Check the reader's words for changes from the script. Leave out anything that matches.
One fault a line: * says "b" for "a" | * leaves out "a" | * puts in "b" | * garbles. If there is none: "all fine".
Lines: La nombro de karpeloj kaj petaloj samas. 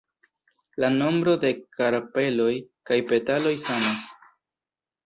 all fine